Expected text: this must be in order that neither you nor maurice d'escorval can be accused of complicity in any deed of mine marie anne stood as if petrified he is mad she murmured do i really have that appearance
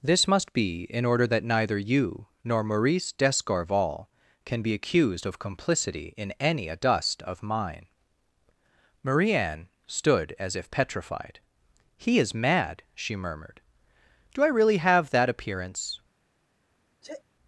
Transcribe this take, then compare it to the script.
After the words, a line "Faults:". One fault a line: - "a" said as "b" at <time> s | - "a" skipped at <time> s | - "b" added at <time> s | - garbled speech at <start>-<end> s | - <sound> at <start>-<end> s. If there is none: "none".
this must be in order that neither you nor maurice d'escorval can be accused of complicity in any adust of mine marie anne stood as if petrified he is mad she murmured do i really have that appearance
Faults:
- "deed" said as "adust" at 6.7 s
- sneeze at 17.0-17.2 s